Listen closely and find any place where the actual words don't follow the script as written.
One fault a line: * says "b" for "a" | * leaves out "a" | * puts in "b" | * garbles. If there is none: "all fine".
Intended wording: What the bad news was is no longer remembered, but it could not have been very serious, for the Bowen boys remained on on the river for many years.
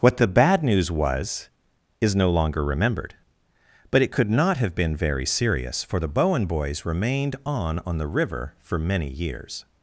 all fine